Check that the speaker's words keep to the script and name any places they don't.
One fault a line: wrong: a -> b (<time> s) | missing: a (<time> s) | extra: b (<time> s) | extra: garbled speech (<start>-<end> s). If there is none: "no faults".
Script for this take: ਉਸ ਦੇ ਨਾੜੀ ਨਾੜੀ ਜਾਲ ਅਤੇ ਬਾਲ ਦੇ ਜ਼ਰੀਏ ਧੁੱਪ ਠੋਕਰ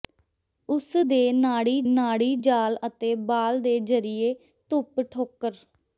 no faults